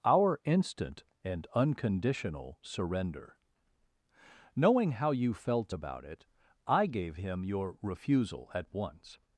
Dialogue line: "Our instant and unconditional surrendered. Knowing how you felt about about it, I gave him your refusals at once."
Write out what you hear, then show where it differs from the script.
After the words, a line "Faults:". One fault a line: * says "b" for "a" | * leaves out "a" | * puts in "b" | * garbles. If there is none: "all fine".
"Our instant and unconditional surrender. Knowing how you felt about it, I gave him your refusal at once."
Faults:
* says "surrender" for "surrendered"
* leaves out "about"
* says "refusal" for "refusals"